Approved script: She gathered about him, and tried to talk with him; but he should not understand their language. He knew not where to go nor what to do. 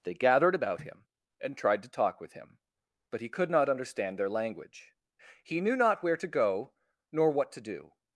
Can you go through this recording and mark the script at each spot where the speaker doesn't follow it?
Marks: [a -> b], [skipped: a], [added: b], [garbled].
[She -> They] gathered about him, and tried to talk with him; but he [should -> could] not understand their language. He knew not where to go nor what to do.